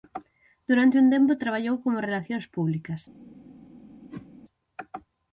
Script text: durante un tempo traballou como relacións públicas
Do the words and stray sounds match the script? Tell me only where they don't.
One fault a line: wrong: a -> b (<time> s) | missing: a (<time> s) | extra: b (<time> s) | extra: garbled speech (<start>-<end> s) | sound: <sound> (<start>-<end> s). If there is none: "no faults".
sound: whoosh (4.1-4.3 s)